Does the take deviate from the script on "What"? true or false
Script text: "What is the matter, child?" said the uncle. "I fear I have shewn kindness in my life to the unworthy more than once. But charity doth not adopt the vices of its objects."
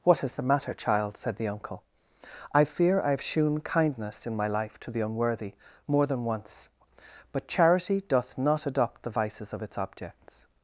false